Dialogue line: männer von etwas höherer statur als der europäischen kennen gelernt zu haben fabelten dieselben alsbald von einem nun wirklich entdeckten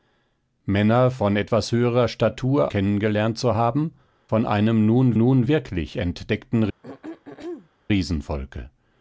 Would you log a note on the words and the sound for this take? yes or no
yes